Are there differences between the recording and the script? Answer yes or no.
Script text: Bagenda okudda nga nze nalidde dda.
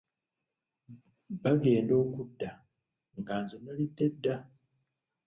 no